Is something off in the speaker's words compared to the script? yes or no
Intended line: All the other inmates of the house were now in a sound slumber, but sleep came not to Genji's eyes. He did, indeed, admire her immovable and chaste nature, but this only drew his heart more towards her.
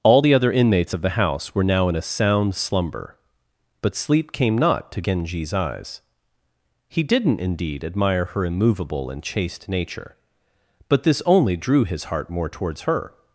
yes